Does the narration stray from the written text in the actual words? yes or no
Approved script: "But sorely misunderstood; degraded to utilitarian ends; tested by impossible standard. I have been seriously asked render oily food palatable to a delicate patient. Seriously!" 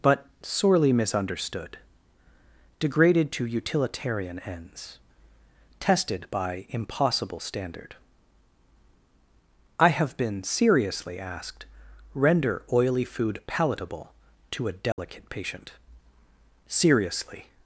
no